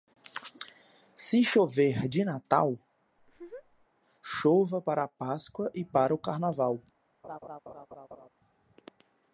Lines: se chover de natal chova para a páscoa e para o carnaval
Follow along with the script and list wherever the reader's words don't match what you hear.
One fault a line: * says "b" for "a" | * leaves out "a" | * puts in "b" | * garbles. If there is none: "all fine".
all fine